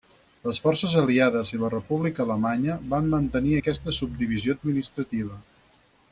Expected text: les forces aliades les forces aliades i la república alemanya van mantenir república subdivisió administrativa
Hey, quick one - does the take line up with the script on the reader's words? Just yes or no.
no